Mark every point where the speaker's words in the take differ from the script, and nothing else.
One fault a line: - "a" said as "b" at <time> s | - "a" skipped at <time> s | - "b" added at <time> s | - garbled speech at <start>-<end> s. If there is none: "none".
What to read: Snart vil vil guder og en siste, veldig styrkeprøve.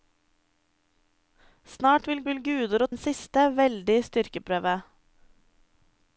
none